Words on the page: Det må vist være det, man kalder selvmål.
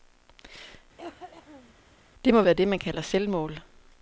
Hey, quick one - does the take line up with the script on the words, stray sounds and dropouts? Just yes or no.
no